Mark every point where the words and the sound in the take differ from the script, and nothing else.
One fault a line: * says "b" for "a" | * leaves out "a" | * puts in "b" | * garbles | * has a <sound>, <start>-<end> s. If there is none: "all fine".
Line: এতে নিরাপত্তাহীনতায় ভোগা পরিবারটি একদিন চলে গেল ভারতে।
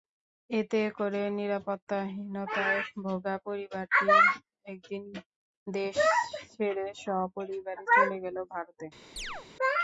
* puts in "করে"
* puts in "দেশ ছেড়ে সপরিবারে"
* has a chirp, 9.2-9.5 s